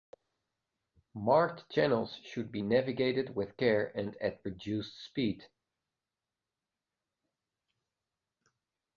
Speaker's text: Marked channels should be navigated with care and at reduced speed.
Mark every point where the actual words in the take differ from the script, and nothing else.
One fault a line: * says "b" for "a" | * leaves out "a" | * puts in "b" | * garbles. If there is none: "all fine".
all fine